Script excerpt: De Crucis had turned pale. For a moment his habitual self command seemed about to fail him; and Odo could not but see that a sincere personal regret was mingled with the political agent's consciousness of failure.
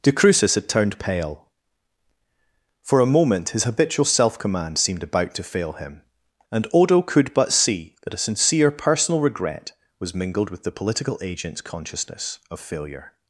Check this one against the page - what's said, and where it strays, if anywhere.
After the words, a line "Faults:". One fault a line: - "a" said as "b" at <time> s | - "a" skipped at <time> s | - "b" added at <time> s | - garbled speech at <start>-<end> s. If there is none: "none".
De Crucis had turned pale. For a moment his habitual self command seemed about to fail him; and Odo could but see that a sincere personal regret was mingled with the political agent's consciousness of failure.
Faults:
- "not" skipped at 7.3 s